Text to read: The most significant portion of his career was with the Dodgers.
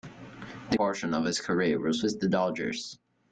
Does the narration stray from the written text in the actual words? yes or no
yes